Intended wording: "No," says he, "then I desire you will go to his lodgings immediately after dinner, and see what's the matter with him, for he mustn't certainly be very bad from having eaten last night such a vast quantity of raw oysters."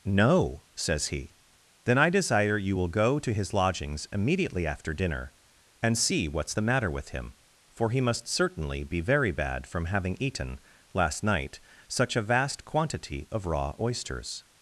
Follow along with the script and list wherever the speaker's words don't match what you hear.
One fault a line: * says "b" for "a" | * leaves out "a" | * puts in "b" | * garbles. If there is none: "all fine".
* says "must" for "mustn't"